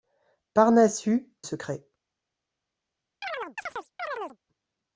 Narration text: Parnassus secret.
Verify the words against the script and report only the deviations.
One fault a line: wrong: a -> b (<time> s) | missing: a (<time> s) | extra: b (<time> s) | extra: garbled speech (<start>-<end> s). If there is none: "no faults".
no faults